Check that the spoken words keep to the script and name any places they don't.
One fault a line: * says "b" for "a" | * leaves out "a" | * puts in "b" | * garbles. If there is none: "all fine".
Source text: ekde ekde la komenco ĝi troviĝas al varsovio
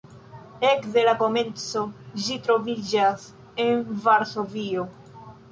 * leaves out "ekde"
* says "en" for "al"